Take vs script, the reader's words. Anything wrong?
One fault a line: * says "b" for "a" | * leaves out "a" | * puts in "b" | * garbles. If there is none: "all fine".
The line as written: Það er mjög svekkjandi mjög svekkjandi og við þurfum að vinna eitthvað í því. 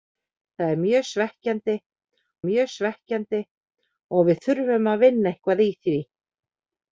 all fine